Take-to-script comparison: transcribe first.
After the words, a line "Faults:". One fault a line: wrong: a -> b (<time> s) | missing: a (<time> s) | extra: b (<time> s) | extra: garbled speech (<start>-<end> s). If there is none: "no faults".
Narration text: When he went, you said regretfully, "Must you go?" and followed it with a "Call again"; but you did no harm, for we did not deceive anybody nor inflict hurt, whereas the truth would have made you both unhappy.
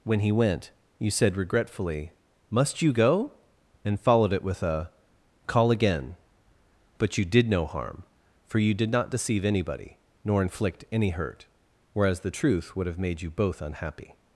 When he went, you said regretfully, "Must you go?" and followed it with a "Call again"; but you did no harm, for you did not deceive anybody nor inflict any hurt, whereas the truth would have made you both unhappy.
Faults:
wrong: we -> you (8.6 s)
extra: any (10.9 s)